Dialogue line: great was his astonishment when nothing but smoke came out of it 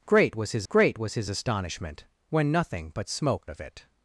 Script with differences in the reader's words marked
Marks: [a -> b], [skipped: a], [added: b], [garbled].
great was his [added: great was his] astonishment when nothing but smoke [skipped: came out] of it